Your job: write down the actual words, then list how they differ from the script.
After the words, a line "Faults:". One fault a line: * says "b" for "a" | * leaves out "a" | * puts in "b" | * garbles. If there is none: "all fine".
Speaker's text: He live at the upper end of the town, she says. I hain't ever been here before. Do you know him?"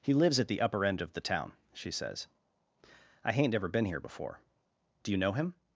He lives at the upper end of the town, she says. I hain't ever been here before. Do you know him?"
Faults:
* says "lives" for "live"